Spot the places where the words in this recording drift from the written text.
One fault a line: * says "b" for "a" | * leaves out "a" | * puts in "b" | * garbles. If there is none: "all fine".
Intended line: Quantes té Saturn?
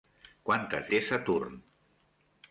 all fine